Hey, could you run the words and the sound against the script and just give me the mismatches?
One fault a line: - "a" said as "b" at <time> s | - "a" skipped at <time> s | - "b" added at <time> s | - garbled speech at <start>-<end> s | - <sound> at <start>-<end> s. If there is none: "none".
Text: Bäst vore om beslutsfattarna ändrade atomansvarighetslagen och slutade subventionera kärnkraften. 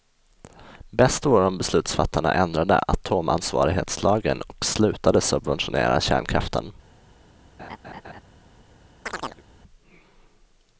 - laugh at 7.6-8.2 s
- chirp at 9.1-9.4 s